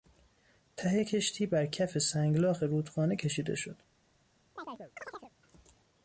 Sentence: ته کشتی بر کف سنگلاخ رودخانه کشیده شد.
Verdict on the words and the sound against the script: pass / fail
fail